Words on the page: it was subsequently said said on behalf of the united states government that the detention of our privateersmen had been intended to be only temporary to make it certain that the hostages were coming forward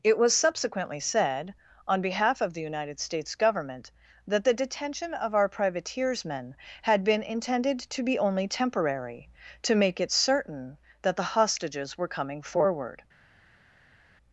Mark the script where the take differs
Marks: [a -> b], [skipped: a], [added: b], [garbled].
it was subsequently said [skipped: said] on behalf of the united states government that the detention of our privateersmen had been intended to be only temporary to make it certain that the hostages were coming forward